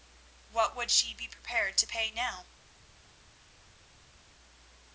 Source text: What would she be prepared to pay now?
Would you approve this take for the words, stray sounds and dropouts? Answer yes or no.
yes